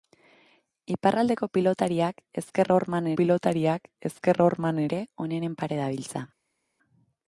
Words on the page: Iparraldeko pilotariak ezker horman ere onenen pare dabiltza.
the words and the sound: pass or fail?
fail